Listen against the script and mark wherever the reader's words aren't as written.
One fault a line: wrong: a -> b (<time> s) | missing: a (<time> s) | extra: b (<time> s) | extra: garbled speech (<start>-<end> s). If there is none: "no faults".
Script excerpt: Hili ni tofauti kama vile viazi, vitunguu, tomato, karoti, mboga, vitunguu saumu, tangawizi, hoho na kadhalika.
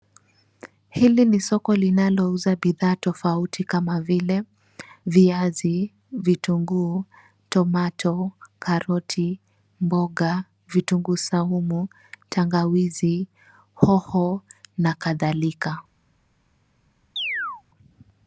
extra: soko linalouza bidhaa (1.4 s)